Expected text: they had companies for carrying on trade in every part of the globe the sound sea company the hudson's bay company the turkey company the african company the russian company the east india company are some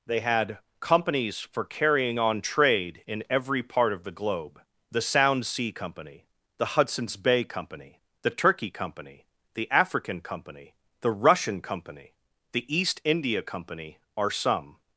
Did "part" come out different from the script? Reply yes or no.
no